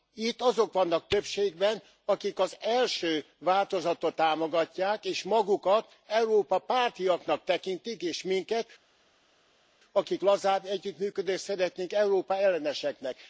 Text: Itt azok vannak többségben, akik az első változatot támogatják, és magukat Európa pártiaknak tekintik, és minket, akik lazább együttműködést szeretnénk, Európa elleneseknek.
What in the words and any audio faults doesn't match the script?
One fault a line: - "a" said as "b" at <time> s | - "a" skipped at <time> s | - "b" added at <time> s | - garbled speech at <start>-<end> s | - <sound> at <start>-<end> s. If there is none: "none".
none